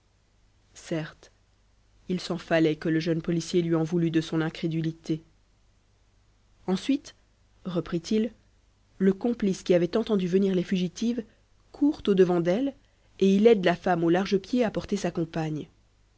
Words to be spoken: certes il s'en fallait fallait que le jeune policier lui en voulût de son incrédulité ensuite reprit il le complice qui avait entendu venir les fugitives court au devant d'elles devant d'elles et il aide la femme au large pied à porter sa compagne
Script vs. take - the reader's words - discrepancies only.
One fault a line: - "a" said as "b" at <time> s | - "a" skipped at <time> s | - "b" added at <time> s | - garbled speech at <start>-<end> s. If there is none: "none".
- "fallait" skipped at 2.8 s
- "devant d'elles" skipped at 12.7 s